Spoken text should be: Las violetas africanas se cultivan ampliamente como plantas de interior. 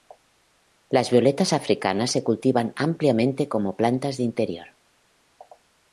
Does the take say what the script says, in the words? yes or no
yes